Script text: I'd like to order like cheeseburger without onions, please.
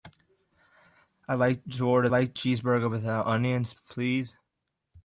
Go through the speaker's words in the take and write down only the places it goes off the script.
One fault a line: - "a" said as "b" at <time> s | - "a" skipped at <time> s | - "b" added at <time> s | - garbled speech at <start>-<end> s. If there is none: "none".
none